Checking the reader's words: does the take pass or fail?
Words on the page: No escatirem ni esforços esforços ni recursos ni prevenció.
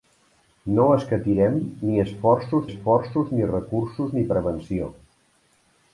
pass